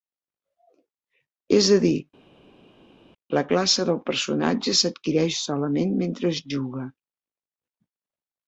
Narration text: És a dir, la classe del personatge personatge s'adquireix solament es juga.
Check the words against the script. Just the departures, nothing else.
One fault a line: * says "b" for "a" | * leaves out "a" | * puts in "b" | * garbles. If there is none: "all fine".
* leaves out "personatge"
* puts in "mentre"